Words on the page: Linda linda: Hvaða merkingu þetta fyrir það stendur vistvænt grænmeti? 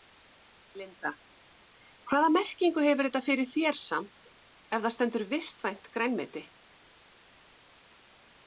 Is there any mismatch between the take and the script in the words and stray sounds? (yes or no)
yes